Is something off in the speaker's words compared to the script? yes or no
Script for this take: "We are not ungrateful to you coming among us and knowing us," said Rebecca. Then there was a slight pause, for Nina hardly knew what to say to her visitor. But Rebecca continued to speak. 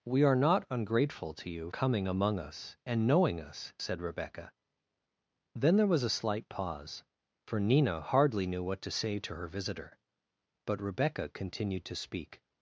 no